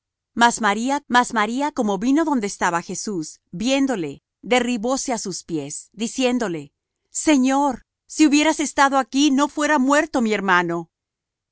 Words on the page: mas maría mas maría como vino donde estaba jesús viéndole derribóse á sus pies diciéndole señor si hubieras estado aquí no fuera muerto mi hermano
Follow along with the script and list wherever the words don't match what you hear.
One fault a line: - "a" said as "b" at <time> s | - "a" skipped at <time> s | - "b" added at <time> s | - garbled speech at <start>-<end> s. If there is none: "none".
none